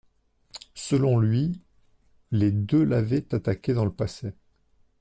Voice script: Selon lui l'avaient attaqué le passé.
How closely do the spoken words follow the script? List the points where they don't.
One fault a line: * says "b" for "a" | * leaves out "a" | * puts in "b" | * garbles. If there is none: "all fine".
* puts in "les deux"
* puts in "dans"